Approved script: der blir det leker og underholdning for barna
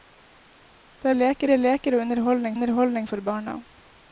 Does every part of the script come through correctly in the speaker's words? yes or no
no